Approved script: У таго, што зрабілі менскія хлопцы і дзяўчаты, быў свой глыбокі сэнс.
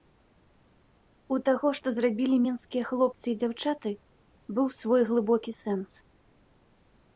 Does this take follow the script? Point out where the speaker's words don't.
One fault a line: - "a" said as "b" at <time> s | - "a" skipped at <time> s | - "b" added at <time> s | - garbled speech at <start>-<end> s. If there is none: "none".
none